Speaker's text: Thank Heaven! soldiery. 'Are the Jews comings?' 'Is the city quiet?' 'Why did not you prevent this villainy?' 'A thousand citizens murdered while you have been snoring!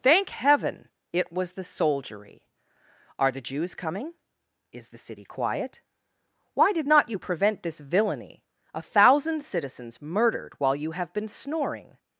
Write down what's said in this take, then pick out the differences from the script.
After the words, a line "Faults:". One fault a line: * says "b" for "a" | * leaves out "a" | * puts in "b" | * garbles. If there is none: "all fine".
Thank Heaven! it was the soldiery. 'Are the Jews coming?' 'Is the city quiet?' 'Why did not you prevent this villainy?' 'A thousand citizens murdered while you have been snoring!
Faults:
* puts in "it was the"
* says "coming" for "comings"